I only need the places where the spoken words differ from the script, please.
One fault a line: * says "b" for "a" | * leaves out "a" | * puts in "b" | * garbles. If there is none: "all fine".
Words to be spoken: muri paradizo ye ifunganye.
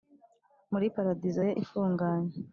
all fine